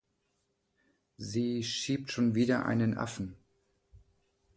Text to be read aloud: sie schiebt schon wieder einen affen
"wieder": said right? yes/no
yes